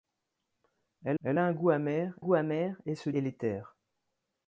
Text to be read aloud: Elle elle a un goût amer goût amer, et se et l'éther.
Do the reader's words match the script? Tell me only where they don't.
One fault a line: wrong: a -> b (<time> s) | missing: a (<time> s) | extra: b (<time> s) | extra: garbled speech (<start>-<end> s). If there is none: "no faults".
no faults